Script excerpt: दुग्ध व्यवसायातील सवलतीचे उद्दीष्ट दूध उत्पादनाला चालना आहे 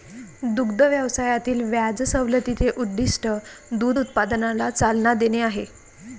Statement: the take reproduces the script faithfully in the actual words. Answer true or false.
false